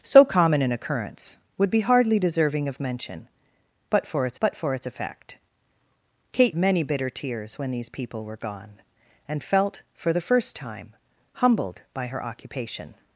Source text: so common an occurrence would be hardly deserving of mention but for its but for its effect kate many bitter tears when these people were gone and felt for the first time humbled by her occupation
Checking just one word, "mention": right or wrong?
right